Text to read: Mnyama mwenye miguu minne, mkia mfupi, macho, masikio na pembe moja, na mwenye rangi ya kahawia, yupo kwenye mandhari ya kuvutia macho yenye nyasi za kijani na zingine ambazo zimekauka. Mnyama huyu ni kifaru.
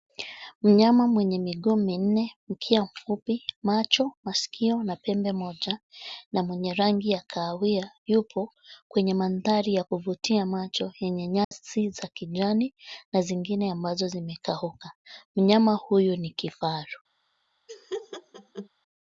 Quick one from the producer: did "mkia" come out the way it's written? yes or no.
yes